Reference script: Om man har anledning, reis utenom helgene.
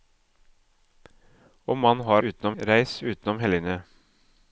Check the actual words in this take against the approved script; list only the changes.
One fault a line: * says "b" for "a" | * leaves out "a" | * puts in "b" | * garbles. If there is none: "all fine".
* says "utenom" for "anledning"